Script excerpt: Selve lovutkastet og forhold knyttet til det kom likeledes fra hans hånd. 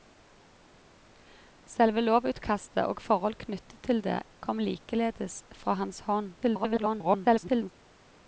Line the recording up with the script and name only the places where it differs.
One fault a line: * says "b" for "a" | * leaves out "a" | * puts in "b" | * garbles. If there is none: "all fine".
* garbles